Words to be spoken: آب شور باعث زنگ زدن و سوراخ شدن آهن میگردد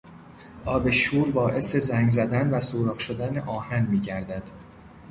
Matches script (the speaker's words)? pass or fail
pass